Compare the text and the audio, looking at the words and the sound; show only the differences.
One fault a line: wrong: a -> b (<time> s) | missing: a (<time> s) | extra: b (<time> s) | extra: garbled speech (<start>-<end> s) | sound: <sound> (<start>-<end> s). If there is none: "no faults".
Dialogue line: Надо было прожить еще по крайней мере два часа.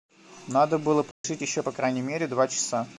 sound: dropout (1.1-1.2 s)